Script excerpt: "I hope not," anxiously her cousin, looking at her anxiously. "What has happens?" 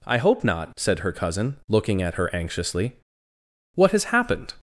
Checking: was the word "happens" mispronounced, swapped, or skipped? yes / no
yes